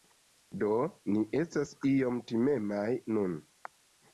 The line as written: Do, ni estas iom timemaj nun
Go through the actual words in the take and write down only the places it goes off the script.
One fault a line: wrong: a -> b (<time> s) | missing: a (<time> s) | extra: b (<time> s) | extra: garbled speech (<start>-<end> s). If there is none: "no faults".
no faults